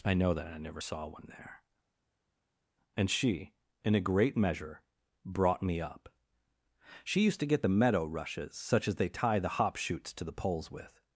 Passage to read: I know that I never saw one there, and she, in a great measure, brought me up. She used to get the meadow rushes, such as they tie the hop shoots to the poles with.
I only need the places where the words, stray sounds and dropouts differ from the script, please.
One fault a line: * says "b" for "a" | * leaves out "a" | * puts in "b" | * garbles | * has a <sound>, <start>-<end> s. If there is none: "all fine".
all fine